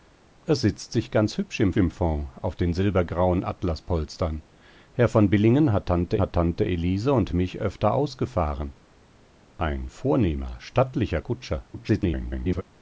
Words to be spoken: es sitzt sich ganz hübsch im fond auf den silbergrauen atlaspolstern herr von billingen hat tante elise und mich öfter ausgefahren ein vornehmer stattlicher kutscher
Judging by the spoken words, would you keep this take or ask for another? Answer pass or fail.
fail